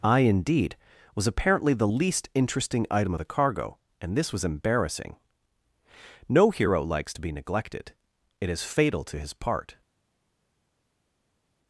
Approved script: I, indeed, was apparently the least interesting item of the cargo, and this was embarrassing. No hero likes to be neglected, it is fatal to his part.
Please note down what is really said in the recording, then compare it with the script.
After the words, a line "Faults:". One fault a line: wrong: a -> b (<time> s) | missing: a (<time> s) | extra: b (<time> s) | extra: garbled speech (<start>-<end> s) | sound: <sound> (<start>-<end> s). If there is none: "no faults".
I, indeed, was apparently the least interesting item of the cargo, and this was embarrassing. No hero likes to be neglected, it is fatal to his part.
Faults:
no faults